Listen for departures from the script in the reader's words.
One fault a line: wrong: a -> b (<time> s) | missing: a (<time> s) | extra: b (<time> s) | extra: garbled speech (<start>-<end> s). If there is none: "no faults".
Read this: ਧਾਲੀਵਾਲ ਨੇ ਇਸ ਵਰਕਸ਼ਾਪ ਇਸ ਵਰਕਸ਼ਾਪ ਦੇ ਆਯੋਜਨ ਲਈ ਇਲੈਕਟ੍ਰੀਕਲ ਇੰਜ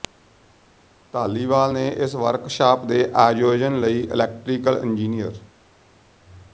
missing: ਇਸ ਵਰਕਸ਼ਾਪ (2.8 s)